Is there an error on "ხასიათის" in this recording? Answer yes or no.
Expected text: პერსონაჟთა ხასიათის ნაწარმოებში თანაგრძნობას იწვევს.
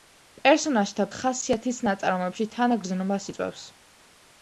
no